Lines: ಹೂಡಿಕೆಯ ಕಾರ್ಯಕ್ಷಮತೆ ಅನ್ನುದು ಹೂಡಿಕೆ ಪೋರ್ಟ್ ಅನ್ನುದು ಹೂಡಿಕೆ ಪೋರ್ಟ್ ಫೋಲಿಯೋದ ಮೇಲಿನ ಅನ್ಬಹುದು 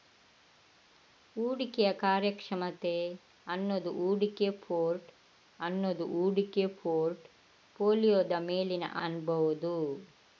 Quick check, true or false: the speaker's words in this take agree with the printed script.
true